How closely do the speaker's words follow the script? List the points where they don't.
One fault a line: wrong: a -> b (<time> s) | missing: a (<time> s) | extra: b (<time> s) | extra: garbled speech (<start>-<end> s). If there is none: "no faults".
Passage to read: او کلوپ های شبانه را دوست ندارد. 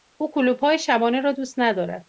no faults